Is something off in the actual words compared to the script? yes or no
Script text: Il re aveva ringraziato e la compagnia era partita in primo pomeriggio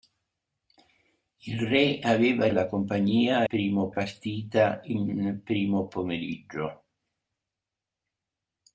yes